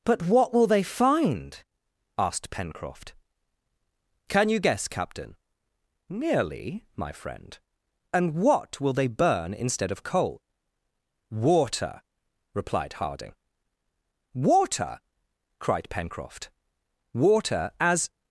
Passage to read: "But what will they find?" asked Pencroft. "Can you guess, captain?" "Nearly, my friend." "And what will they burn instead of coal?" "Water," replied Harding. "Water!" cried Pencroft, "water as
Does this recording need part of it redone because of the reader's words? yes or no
no